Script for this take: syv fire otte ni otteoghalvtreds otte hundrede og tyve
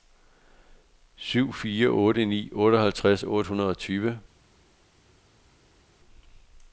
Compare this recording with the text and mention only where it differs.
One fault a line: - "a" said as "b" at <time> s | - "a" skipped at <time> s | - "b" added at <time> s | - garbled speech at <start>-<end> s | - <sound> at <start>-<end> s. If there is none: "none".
none